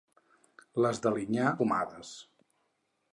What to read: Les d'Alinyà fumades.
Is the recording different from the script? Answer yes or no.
no